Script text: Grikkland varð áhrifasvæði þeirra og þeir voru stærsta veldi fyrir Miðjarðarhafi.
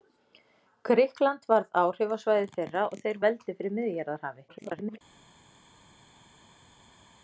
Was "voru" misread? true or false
true